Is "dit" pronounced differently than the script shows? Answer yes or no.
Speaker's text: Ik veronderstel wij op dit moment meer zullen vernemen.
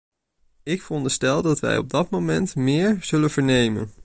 yes